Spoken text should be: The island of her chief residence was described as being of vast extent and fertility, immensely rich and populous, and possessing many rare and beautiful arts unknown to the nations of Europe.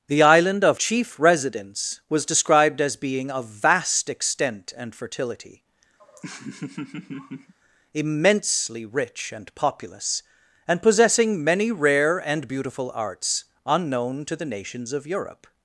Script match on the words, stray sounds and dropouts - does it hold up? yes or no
no